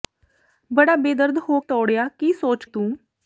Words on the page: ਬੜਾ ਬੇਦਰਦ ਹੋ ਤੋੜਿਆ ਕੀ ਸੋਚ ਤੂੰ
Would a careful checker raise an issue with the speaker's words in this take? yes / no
no